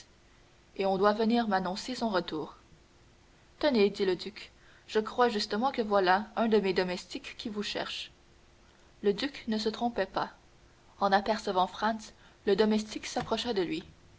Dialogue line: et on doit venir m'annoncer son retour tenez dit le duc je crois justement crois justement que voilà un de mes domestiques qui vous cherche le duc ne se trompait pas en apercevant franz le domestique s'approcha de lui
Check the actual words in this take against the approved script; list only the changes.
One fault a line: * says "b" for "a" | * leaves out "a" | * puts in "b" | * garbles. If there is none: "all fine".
* leaves out "crois justement"